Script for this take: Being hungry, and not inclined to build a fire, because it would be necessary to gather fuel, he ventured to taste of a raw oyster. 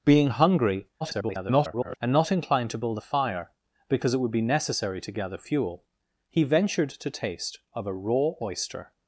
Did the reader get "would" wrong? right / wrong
right